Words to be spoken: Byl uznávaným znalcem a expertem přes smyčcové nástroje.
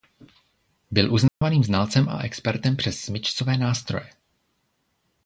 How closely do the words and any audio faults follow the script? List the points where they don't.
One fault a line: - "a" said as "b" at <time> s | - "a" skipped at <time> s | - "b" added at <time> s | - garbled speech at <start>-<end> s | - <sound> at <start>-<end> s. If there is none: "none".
- dropout at 1.3-1.4 s